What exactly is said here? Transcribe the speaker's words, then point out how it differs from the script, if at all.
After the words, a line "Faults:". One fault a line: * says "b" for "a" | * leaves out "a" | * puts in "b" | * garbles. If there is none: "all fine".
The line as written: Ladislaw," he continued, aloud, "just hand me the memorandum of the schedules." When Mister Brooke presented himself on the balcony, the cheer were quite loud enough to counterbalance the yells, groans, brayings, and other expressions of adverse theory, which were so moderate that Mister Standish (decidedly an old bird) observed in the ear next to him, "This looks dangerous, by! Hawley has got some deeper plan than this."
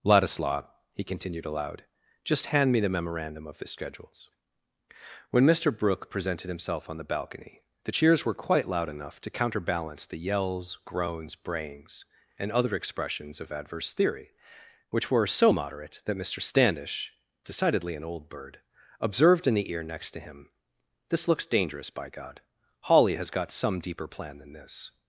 Ladislaw," he continued, aloud, "just hand me the memorandum of the schedules." When Mister Brooke presented himself on the balcony, the cheers were quite loud enough to counterbalance the yells, groans, brayings, and other expressions of adverse theory, which were so moderate that Mister Standish (decidedly an old bird) observed in the ear next to him, "This looks dangerous, by God! Hawley has got some deeper plan than this."
Faults:
* says "cheers" for "cheer"
* puts in "God"